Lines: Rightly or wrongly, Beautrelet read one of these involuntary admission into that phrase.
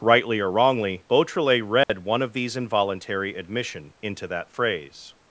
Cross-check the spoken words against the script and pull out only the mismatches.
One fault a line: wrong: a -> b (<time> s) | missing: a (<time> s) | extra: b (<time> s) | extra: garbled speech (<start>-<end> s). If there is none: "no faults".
no faults